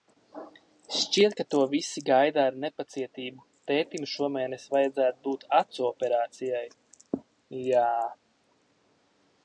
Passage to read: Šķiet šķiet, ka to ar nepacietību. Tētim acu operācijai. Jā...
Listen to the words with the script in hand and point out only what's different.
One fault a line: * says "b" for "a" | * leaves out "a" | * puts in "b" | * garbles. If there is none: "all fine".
* leaves out "šķiet"
* puts in "visi gaida"
* puts in "šomēnes vajadzētu būt"